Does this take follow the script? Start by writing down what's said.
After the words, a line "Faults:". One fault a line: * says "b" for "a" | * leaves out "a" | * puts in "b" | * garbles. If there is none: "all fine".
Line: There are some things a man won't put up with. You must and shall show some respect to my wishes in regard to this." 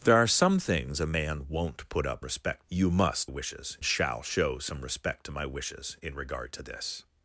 There are some things a man won't put up respect. You must wishes shall show some respect to my wishes in regard to this."
Faults:
* says "respect" for "with"
* says "wishes" for "and"